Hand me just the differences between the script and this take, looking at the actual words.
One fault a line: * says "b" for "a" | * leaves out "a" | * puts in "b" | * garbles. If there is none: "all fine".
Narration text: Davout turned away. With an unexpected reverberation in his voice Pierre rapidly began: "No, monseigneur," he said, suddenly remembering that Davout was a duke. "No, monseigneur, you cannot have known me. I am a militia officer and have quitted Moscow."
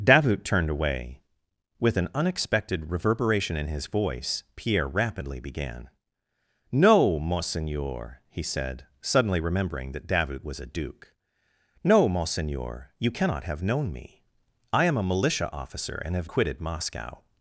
all fine